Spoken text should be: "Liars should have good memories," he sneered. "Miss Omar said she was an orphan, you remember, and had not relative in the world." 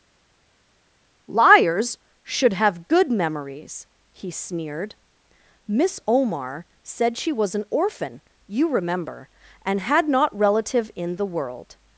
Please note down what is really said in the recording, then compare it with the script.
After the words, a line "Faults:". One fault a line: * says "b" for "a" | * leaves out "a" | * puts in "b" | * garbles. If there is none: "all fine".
"Liars should have good memories," he sneered. "Miss Omar said she was an orphan, you remember, and had not relative in the world."
Faults:
all fine